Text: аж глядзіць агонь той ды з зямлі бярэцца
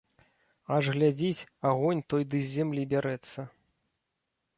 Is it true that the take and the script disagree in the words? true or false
false